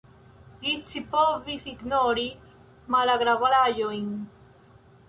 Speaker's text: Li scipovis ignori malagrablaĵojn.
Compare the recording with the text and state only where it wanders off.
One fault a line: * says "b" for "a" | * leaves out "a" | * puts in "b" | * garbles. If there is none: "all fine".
all fine